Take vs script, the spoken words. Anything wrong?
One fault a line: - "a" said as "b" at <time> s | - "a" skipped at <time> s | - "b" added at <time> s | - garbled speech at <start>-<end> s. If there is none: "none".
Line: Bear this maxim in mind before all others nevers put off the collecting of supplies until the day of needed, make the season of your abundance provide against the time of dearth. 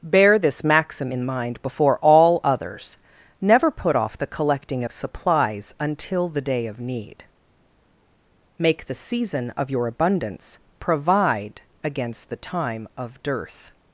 - "nevers" said as "never" at 3.4 s
- "needed" said as "need" at 6.8 s